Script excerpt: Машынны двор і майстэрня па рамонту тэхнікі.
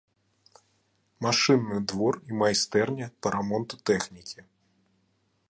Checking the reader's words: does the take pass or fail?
pass